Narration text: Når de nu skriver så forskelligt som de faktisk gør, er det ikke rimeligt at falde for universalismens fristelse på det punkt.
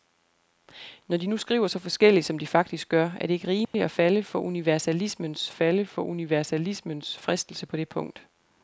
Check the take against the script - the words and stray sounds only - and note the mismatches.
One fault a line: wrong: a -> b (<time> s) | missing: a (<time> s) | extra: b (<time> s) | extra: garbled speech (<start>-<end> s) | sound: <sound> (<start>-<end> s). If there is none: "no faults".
sound: dropout (3.6-3.7 s)
extra: falde for universalismens (5.5 s)